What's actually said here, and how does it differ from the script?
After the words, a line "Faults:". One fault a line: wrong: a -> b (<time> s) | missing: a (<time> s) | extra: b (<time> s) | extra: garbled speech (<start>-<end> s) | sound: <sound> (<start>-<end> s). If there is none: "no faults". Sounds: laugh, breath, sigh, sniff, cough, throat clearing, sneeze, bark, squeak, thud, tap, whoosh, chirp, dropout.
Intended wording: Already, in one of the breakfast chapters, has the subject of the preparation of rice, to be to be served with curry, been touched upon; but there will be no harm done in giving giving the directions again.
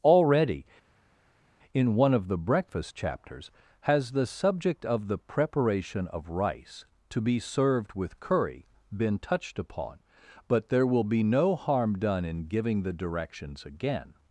Already, in one of the breakfast chapters, has the subject of the preparation of rice, to be served with curry, been touched upon; but there will be no harm done in giving the directions again.
Faults:
missing: to be (7.4 s)
missing: giving (12.8 s)